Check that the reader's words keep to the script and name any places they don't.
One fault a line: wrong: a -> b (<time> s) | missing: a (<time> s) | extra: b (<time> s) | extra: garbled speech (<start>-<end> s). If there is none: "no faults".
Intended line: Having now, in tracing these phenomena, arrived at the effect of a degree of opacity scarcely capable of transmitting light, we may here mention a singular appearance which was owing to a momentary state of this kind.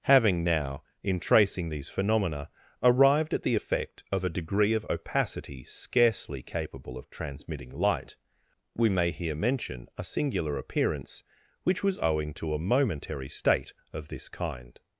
no faults